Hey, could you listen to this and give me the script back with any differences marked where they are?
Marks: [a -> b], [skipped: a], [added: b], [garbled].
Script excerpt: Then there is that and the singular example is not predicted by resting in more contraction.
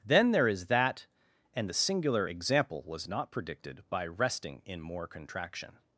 Then there is that and the singular example [is -> was] not predicted by resting in more contraction.